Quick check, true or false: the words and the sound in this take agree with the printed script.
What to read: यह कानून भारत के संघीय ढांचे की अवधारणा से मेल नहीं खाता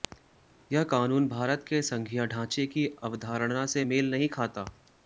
true